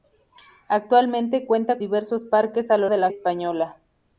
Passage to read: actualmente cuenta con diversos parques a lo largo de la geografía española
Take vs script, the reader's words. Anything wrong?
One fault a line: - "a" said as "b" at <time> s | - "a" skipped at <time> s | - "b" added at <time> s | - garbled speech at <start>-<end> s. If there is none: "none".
- "con" skipped at 1.8 s
- "largo" skipped at 2.9 s
- "geografía" skipped at 3.1 s